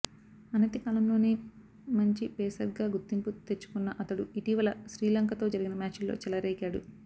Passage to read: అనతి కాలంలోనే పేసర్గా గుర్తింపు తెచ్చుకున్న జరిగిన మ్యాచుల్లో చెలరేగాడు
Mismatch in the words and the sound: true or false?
true